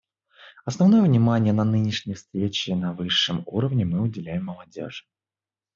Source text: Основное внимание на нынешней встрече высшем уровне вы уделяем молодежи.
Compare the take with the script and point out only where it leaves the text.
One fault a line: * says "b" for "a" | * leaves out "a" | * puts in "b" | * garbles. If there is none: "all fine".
* puts in "на"
* says "мы" for "вы"